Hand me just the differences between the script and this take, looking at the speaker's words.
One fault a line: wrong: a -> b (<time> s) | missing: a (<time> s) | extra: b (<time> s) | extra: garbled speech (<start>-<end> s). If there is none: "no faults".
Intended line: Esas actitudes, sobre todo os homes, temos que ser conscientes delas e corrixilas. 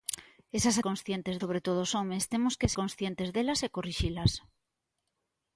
wrong: actitudes -> conscientes (0.9 s)
missing: ser (2.7 s)